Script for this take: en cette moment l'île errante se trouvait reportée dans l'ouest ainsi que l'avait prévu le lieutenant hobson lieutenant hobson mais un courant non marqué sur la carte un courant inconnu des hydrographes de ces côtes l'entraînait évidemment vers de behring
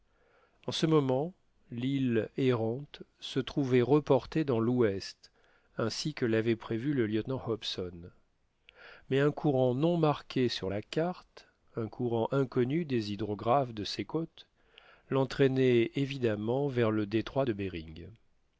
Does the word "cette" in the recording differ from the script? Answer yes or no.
yes